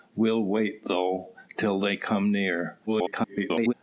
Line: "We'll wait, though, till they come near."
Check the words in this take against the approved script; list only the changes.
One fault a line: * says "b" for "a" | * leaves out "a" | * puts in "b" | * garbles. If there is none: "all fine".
* garbles